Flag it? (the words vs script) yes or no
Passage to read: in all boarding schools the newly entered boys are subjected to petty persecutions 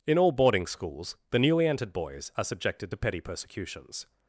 no